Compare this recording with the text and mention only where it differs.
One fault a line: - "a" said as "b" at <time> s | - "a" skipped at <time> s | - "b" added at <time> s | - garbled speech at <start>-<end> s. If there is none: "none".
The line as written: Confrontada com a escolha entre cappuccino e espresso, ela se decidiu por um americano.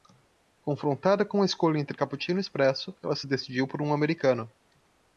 none